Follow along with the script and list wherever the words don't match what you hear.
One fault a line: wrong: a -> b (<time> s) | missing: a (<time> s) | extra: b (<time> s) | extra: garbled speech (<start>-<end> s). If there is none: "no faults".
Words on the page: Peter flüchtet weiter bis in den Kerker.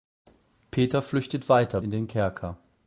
missing: bis (1.8 s)